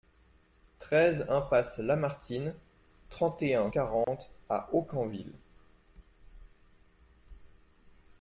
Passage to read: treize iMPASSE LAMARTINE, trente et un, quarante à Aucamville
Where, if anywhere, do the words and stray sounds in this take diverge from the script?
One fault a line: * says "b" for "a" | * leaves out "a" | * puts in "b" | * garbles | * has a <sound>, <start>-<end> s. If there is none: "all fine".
* has a dropout, 4.0-4.1 s